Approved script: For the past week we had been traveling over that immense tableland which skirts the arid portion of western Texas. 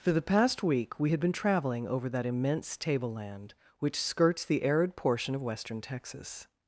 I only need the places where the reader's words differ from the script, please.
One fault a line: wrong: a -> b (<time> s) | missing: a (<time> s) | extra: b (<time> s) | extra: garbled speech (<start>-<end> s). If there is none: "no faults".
no faults